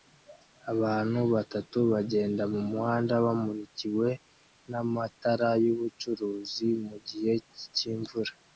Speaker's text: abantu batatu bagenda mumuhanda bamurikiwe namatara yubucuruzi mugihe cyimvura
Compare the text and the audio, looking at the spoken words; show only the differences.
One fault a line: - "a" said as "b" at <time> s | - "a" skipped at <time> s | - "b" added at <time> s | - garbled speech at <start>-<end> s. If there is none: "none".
none